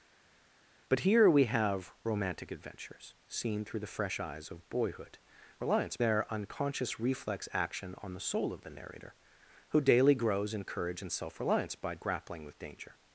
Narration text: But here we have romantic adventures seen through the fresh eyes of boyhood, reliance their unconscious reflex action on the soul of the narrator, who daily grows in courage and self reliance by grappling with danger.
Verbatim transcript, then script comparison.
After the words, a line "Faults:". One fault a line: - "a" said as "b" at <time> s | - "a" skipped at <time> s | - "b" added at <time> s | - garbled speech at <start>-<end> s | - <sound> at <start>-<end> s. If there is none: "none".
But here we have romantic adventures seen through the fresh eyes of boyhood, reliance their unconscious reflex action on the soul of the narrator, who daily grows in courage and self reliance by grappling with danger.
Faults:
none